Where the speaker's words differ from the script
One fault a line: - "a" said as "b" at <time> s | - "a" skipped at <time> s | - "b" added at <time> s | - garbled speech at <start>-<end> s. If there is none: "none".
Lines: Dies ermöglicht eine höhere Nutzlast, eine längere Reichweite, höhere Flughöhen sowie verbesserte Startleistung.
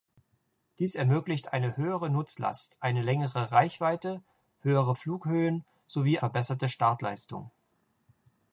none